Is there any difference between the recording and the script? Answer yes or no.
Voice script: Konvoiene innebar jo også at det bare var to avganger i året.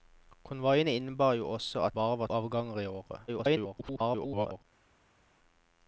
yes